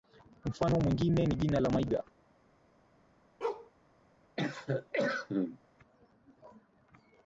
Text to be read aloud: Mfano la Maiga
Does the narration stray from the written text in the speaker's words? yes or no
yes